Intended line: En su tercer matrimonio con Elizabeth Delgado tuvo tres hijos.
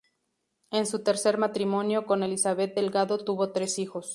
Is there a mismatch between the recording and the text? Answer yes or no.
no